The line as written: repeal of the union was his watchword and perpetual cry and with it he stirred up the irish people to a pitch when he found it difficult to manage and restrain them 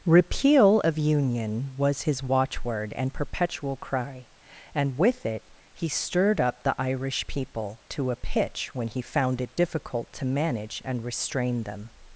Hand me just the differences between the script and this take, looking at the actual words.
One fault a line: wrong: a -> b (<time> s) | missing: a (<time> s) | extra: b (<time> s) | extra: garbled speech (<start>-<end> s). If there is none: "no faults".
missing: the (1.0 s)